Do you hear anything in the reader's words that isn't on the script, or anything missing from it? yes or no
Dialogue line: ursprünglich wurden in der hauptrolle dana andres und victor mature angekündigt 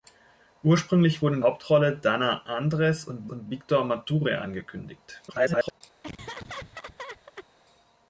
yes